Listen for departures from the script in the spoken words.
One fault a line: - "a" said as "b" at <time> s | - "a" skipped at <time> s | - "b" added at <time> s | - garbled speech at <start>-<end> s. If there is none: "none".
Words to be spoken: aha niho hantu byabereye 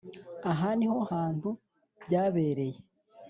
none